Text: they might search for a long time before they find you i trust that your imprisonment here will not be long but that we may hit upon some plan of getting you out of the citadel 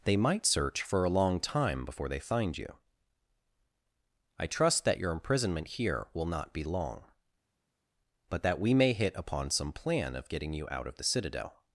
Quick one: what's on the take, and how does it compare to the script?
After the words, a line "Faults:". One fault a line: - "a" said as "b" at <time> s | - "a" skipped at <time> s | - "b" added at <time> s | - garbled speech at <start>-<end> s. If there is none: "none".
they might search for a long time before they find you i trust that your imprisonment here will not be long but that we may hit upon some plan of getting you out of the citadel
Faults:
none